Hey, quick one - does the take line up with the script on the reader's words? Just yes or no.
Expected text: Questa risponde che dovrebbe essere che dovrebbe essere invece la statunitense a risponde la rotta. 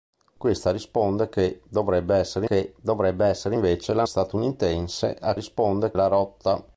yes